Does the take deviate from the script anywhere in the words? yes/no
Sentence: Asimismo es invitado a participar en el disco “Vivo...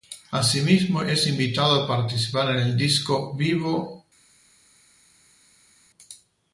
no